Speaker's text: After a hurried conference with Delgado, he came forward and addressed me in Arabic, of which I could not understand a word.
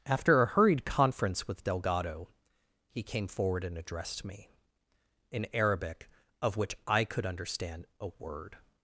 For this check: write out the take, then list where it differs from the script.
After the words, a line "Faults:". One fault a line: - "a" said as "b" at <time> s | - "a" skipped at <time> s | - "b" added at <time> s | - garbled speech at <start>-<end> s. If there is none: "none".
After a hurried conference with Delgado, he came forward and addressed me in Arabic, of which I could understand a word.
Faults:
- "not" skipped at 7.3 s